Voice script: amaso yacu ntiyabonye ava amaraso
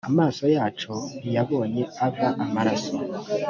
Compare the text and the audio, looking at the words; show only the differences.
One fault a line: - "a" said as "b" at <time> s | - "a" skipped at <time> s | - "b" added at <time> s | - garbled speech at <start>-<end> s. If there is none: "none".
none